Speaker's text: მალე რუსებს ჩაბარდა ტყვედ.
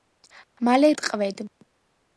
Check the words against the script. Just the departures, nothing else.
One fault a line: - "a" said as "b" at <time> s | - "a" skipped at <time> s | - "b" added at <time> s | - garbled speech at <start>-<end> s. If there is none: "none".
- "რუსებს ჩაბარდა" skipped at 0.9 s